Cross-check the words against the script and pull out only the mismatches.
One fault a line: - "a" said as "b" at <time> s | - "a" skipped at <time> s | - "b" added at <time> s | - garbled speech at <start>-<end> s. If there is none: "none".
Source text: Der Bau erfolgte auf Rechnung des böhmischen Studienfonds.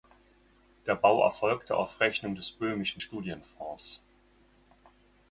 none